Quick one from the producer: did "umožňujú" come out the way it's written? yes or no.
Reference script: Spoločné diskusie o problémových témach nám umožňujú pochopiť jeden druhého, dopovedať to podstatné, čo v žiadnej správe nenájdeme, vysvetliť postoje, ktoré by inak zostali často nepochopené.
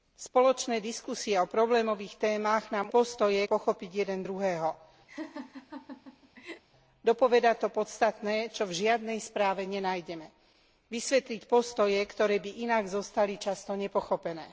no